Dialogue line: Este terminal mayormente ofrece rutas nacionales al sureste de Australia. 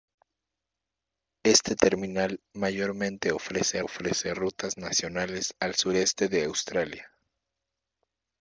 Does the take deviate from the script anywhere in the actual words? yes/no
yes